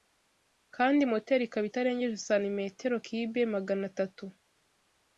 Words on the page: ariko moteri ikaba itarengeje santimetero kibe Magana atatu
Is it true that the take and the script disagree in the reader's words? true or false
true